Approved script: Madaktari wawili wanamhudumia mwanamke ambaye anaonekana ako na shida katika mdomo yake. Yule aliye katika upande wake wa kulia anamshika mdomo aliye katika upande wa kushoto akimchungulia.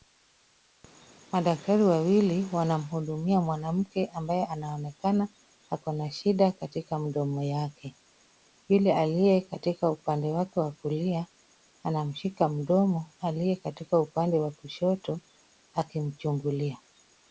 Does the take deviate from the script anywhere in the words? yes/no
no